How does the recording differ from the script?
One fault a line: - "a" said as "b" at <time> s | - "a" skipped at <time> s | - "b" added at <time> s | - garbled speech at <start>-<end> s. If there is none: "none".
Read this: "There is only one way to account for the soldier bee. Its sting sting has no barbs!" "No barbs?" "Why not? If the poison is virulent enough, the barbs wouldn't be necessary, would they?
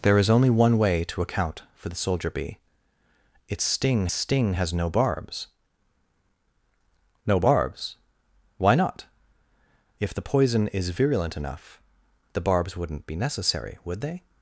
none